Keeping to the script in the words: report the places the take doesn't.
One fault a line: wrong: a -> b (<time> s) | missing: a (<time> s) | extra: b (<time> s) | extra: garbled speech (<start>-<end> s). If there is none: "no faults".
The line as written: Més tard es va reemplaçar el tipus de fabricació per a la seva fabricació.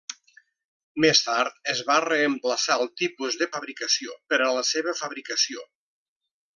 no faults